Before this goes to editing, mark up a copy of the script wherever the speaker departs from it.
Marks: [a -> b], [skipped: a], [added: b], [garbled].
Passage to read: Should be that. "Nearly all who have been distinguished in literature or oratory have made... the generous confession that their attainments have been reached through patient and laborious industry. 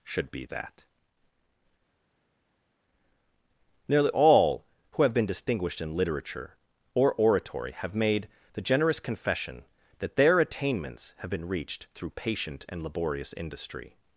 Should be that. "Nearly all who have been distinguished in literature or oratory have made... the generous confession that their attainments have been reached through patient and laborious industry.